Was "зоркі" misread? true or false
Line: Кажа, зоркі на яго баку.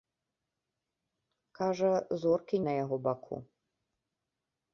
false